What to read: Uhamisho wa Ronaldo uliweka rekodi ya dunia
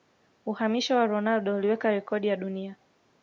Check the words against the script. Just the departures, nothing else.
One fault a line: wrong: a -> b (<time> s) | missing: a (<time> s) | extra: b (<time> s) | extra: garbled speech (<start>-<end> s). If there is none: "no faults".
no faults